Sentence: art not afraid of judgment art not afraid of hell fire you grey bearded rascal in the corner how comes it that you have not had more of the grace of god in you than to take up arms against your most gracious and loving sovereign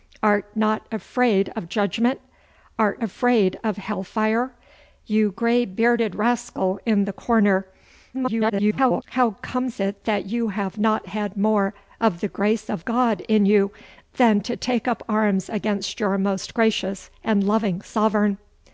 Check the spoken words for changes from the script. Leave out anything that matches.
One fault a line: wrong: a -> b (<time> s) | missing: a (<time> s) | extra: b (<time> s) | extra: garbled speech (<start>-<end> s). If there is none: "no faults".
missing: not (3.0 s)
extra: garbled speech (8.1-9.0 s)